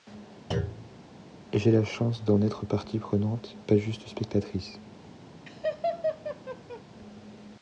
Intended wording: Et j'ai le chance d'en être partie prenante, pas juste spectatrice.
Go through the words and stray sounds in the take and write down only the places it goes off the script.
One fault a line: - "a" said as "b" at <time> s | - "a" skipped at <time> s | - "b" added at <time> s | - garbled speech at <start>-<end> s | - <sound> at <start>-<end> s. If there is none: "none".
- thud at 0.5-1.0 s
- "le" said as "la" at 1.7 s
- laugh at 5.5-6.8 s